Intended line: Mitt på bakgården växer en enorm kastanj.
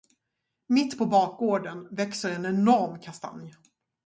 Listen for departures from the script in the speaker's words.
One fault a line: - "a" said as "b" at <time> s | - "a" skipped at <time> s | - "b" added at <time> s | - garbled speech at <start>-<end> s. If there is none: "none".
none